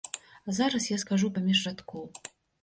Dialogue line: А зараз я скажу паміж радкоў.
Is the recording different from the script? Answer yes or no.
no